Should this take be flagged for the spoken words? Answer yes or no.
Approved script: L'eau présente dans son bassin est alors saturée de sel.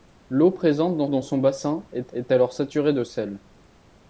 yes